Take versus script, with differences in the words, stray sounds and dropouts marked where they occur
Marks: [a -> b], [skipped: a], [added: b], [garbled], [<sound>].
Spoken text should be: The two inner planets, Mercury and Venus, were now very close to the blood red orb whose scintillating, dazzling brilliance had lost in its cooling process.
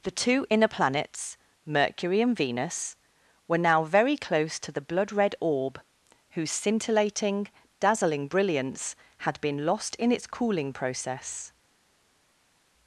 The two inner planets, Mercury and Venus, were now very close to the blood red orb whose scintillating, dazzling brilliance had [added: been] lost in its cooling process.